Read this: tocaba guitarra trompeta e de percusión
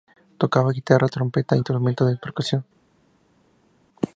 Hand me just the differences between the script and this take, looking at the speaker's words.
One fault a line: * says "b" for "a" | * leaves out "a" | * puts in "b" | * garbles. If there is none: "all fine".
* puts in "instrumentos"